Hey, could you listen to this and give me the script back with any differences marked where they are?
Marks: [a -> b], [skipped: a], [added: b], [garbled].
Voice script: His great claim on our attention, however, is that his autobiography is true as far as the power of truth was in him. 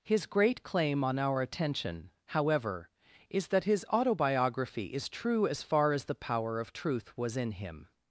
His great claim on our attention, however, is that his autobiography is true as far as the power of truth was in him.